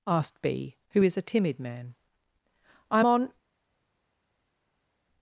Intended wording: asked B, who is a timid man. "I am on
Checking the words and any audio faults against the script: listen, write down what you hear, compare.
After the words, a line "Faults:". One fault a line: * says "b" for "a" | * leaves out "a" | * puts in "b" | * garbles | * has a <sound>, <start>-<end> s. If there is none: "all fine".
asked B, who is a timid man. "I am on
Faults:
all fine